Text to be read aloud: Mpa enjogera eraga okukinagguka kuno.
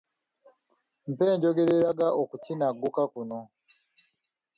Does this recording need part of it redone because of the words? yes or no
no